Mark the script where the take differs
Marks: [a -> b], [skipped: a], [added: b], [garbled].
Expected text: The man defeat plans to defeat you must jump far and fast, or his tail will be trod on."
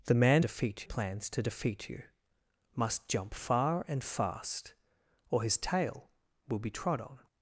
The man defeat plans to defeat you must jump far and fast, or his tail will be trod on."